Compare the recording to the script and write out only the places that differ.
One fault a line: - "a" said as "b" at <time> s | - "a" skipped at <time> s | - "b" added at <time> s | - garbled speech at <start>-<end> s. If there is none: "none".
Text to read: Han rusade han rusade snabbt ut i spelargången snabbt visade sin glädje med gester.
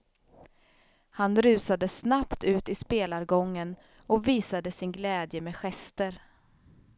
- "han rusade" skipped at 1.9 s
- "snabbt" said as "och" at 4.1 s